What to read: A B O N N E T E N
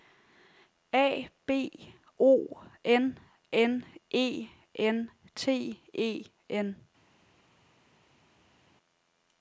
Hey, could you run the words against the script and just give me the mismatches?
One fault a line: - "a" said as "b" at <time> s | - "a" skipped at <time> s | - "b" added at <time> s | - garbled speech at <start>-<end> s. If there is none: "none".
- "N" added at 4.7 s